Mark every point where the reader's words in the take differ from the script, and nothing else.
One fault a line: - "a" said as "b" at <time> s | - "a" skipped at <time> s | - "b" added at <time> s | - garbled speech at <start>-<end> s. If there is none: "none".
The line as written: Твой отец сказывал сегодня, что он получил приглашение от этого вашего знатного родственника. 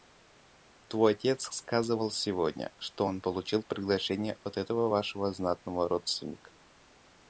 none